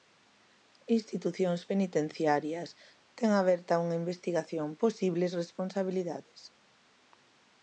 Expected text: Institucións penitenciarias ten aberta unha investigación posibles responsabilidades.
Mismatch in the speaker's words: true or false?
false